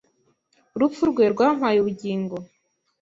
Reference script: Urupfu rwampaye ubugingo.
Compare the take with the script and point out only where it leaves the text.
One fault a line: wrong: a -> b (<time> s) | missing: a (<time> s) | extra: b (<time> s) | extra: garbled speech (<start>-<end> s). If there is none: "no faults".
extra: rwe (1.1 s)